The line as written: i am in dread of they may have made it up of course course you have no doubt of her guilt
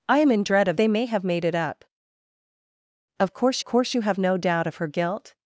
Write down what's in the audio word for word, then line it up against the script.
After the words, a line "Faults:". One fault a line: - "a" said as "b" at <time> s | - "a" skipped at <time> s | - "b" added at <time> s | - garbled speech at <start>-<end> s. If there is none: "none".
i am in dread of they may have made it up of course course you have no doubt of her guilt
Faults:
none